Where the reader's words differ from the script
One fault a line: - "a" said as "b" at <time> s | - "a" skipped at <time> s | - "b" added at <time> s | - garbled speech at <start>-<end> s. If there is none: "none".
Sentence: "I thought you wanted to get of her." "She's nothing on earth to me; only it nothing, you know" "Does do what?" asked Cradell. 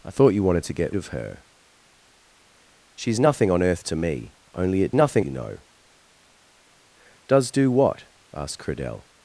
none